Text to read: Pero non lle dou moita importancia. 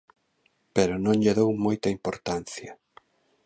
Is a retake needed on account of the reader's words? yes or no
no